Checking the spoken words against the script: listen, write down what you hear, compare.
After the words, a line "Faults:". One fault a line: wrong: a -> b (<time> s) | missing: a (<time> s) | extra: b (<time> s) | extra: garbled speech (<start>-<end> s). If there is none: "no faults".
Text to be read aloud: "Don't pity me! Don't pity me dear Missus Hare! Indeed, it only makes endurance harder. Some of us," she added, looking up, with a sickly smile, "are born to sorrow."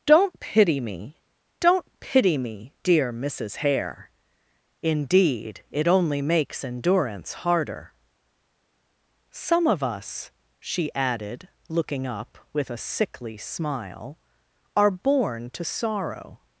"Don't pity me! Don't pity me dear Missus Hare! Indeed, it only makes endurance harder. Some of us," she added, looking up, with a sickly smile, "are born to sorrow."
Faults:
no faults